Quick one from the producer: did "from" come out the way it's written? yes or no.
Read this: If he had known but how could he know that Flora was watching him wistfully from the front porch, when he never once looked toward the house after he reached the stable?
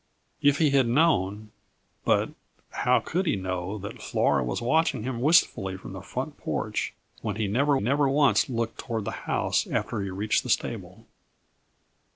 yes